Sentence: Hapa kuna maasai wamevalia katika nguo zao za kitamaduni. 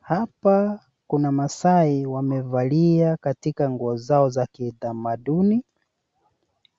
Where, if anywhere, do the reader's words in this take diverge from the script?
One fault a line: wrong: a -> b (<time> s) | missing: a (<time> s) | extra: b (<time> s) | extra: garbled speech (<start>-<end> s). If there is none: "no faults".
no faults